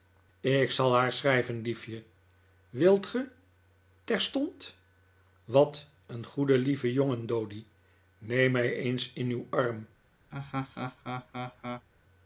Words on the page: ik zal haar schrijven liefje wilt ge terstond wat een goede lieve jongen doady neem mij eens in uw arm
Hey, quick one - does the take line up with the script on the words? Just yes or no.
yes